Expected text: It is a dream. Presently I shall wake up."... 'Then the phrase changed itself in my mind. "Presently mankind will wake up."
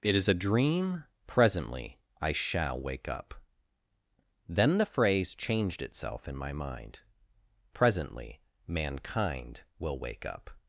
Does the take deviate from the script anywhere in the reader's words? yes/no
no